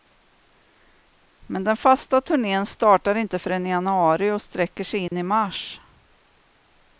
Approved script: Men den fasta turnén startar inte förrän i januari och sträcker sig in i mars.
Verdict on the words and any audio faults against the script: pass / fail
fail